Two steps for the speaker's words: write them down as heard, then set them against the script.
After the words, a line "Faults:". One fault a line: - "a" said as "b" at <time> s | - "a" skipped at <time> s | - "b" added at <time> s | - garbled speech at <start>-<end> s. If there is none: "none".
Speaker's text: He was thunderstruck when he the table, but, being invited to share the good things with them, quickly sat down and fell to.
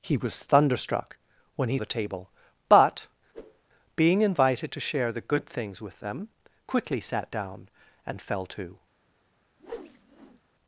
He was thunderstruck when he the table, but, being invited to share the good things with them, quickly sat down and fell to.
Faults:
none